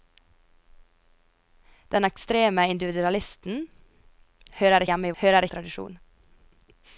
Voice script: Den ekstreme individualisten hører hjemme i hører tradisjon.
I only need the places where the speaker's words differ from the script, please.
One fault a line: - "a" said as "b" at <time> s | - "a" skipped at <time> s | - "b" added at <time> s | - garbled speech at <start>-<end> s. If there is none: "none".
none